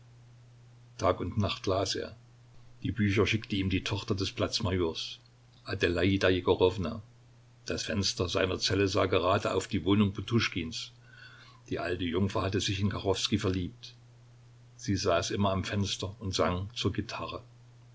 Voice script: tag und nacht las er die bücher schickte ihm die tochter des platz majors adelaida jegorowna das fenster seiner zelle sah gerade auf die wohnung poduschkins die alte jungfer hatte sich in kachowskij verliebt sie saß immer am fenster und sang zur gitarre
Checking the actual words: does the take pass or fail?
pass